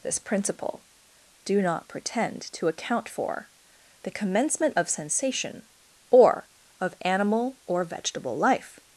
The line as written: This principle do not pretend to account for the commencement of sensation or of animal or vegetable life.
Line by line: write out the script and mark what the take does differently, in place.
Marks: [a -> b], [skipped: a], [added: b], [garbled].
This principle do not pretend to account for the commencement of sensation or of animal or vegetable life.